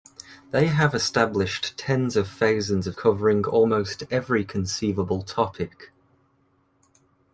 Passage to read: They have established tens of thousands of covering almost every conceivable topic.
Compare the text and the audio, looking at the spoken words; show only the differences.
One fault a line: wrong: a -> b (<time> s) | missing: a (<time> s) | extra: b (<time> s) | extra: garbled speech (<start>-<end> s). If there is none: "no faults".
no faults